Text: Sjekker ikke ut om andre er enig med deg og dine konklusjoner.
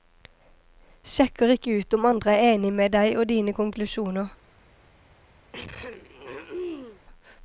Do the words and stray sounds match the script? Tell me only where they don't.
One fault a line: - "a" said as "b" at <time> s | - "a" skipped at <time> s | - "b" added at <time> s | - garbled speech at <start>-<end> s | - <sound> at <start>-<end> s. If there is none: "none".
- throat clearing at 5.5-7.0 s